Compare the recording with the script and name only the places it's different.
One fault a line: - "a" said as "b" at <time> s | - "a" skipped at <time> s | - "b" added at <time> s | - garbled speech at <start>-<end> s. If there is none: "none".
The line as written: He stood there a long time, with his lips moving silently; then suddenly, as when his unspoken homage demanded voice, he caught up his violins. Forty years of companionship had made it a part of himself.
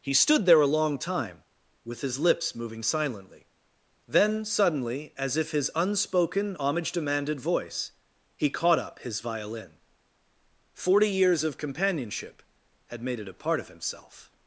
- "when" said as "if" at 5.4 s
- "violins" said as "violin" at 9.2 s